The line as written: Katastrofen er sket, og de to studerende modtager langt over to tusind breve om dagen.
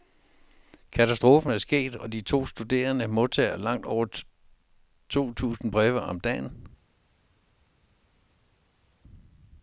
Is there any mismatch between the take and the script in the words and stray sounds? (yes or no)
no